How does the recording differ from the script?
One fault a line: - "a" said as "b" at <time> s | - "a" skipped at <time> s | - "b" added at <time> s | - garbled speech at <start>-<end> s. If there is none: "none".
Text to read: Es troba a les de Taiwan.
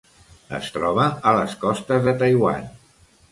- "costes" added at 1.6 s